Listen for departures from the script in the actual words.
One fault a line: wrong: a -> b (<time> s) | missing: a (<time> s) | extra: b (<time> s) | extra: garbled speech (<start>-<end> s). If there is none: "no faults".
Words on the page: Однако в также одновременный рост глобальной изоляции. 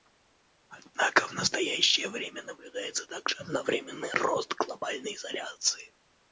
extra: настоящее время наблюдается (1.3 s)